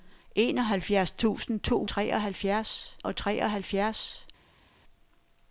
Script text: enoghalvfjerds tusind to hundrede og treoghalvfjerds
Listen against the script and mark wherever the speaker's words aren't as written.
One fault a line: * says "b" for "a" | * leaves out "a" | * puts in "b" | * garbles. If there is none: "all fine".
* says "treoghalvfjerds" for "hundrede"